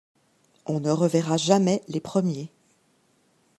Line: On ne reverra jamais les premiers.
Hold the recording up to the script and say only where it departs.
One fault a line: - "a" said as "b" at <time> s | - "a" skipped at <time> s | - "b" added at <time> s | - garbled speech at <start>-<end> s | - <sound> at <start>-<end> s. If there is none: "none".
none